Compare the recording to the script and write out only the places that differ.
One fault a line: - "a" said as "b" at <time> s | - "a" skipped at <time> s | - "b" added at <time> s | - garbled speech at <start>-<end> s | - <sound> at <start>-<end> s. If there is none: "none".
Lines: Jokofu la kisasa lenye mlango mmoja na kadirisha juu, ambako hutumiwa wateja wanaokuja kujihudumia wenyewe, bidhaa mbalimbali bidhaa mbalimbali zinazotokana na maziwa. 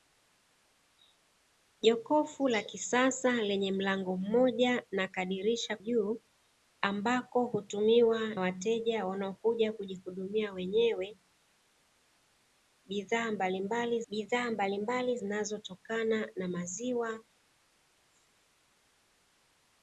none